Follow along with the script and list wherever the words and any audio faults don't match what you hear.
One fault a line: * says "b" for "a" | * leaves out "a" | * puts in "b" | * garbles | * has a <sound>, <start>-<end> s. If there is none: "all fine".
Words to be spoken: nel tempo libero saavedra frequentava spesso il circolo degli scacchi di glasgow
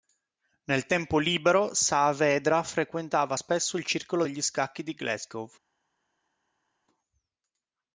all fine